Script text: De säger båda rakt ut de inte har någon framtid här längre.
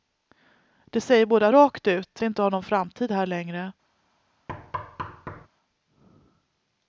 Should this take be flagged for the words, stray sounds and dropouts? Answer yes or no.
yes